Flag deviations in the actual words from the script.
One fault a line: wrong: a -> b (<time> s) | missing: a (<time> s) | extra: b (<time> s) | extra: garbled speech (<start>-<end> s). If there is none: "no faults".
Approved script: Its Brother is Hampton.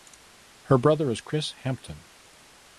wrong: Its -> Her (0.6 s)
extra: Chris (1.2 s)